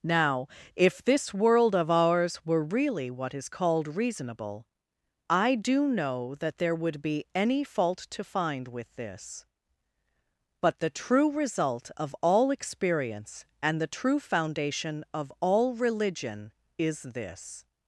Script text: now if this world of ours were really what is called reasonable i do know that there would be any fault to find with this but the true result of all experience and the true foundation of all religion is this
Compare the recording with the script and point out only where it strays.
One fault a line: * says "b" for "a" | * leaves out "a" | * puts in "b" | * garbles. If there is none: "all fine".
all fine